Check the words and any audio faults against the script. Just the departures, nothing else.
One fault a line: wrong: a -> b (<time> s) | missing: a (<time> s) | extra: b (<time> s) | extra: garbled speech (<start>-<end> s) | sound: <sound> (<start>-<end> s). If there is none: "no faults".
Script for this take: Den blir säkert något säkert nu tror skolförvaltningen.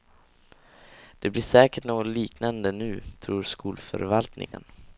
wrong: Den -> Det (1.2 s)
wrong: säkert -> liknande (2.1 s)
sound: dropout (4.5-4.5 s)